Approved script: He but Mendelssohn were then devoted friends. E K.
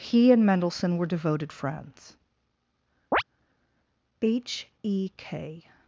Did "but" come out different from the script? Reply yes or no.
yes